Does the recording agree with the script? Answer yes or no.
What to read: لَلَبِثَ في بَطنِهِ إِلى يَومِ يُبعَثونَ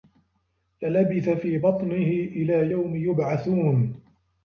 yes